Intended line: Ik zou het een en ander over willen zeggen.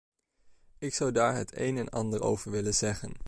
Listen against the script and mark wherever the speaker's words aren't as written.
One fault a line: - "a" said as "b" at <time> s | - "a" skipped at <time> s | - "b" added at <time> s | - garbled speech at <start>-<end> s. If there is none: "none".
- "daar" added at 1.1 s